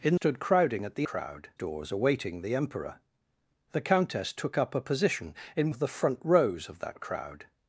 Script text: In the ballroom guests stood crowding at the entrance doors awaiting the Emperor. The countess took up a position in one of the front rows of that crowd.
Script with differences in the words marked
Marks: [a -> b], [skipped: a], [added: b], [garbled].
In [skipped: the ballroom guests] stood crowding at the [entrance -> crowd] doors awaiting the Emperor. The countess took up a position in [skipped: one] of the front rows of that crowd.